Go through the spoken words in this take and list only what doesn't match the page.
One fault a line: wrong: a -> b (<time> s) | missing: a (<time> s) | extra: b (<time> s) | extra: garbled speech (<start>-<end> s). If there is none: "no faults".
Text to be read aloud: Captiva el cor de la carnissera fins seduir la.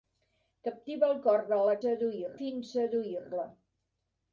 wrong: carnissera -> seduir (1.8 s)